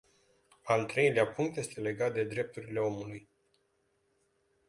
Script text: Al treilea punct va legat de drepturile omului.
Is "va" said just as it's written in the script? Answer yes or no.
no